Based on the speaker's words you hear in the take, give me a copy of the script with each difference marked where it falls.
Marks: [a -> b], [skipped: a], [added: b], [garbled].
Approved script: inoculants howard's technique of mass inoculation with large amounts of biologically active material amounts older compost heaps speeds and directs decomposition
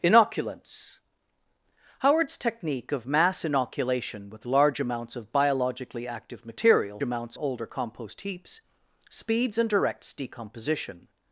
inoculants howard's technique of mass inoculation with large amounts of biologically active material amounts older compost heaps speeds and directs decomposition